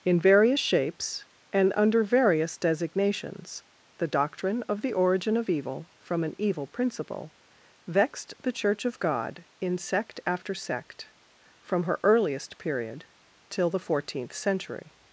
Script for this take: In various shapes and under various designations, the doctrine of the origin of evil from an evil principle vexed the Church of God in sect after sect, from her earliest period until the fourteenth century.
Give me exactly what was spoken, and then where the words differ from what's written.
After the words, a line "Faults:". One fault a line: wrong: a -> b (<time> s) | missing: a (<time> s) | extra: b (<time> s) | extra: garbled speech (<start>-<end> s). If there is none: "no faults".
In various shapes and under various designations, the doctrine of the origin of evil from an evil principle vexed the Church of God in sect after sect, from her earliest period till the fourteenth century.
Faults:
wrong: until -> till (13.5 s)